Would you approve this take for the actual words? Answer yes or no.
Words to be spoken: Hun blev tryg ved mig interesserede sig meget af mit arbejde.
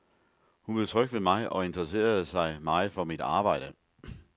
no